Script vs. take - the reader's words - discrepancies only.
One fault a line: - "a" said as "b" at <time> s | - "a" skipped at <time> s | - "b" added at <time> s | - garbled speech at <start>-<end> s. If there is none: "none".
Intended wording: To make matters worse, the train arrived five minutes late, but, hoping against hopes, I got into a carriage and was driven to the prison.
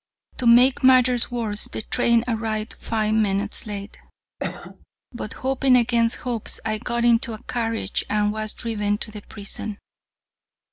none